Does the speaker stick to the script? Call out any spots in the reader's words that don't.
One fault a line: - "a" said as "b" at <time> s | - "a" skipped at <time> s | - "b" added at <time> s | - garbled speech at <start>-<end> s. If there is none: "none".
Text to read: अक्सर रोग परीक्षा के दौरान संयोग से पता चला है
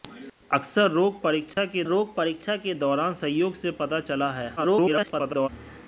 - "रोग परीक्षा के" added at 1.9 s
- garbled speech at 4.6-5.5 s